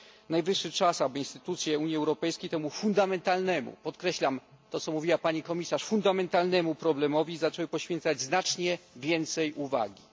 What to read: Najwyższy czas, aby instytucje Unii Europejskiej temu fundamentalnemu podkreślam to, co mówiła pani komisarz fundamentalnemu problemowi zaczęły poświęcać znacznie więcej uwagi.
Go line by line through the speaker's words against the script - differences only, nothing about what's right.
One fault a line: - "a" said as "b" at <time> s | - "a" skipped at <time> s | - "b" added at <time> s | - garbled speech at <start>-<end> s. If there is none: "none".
none